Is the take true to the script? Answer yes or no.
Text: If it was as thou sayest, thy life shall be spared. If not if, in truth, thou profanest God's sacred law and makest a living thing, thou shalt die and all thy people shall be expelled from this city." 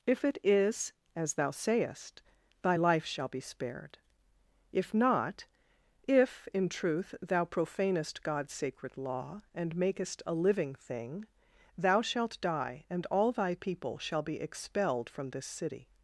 no